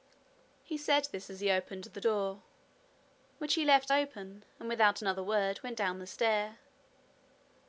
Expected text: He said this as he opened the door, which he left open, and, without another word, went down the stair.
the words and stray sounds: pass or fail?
pass